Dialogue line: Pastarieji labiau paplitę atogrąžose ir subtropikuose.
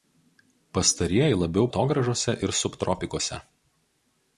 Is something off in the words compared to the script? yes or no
yes